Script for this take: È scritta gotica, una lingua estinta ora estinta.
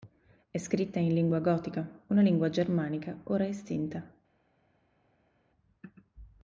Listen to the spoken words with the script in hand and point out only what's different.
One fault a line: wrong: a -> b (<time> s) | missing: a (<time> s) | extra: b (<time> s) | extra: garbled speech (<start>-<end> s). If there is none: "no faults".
extra: in lingua (1.0 s)
wrong: estinta -> germanica (2.5 s)